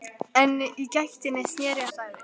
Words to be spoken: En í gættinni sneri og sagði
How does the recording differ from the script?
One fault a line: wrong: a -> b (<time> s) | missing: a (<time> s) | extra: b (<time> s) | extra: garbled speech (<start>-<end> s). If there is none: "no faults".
no faults